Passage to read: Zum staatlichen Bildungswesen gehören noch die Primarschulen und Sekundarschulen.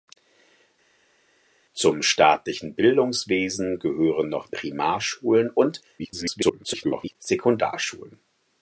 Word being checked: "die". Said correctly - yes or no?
no